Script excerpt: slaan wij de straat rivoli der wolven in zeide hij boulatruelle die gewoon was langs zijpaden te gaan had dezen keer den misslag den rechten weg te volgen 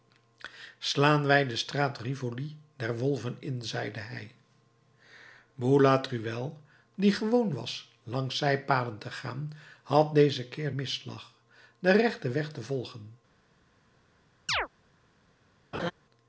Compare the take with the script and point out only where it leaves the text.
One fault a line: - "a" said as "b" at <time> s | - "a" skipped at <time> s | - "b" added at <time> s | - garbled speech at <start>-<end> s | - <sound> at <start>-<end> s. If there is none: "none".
- "den" skipped at 10.7 s
- chirp at 14.5-14.7 s
- laugh at 15.7-15.9 s